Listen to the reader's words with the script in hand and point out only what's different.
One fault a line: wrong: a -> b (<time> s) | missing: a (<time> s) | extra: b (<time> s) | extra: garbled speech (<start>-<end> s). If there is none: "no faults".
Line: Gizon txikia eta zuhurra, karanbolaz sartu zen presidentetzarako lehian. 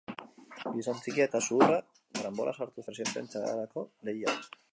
missing: zen (2.9 s)